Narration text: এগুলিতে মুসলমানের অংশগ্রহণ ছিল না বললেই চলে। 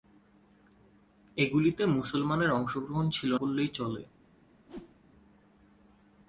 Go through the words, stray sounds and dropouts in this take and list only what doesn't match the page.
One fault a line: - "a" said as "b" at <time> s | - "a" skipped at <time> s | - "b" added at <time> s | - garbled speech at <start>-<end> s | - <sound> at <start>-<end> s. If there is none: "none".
- "না" skipped at 3.3 s
- whoosh at 4.7-5.0 s